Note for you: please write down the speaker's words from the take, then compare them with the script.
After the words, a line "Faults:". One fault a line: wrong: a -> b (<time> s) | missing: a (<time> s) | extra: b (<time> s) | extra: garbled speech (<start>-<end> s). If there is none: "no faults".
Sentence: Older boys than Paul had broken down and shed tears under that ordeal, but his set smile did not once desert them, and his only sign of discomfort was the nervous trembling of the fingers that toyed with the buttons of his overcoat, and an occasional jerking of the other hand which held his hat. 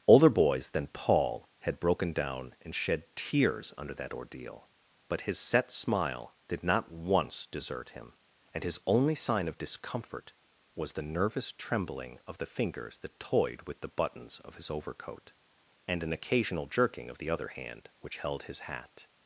Older boys than Paul had broken down and shed tears under that ordeal, but his set smile did not once desert him, and his only sign of discomfort was the nervous trembling of the fingers that toyed with the buttons of his overcoat, and an occasional jerking of the other hand which held his hat.
Faults:
wrong: them -> him (7.9 s)